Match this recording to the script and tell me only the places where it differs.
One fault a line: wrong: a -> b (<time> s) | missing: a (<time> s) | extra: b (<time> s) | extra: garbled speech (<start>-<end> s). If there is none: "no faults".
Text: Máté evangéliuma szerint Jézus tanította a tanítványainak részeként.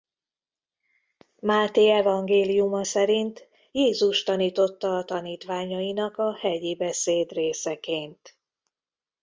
extra: a hegyi beszéd (6.2 s)